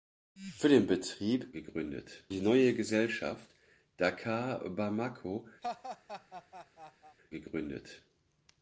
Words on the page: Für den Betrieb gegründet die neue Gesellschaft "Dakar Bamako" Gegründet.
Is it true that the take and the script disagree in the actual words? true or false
false